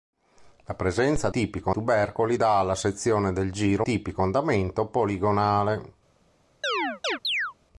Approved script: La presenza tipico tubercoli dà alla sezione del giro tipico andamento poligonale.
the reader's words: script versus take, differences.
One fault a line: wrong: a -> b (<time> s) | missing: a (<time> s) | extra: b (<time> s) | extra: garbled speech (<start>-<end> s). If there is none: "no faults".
no faults